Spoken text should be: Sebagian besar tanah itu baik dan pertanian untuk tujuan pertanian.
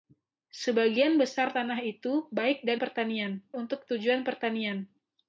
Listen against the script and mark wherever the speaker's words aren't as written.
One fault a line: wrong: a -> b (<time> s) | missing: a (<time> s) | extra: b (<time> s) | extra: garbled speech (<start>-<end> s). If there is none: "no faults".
no faults